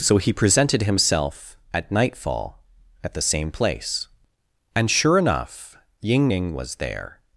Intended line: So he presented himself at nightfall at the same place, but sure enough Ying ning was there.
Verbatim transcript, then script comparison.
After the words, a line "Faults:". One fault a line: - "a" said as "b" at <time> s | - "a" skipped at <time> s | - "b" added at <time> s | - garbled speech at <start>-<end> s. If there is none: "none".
So he presented himself at nightfall at the same place, and sure enough Ying ning was there.
Faults:
- "but" said as "and" at 4.8 s